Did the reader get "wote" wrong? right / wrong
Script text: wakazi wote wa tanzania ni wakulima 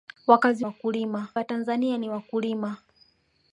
wrong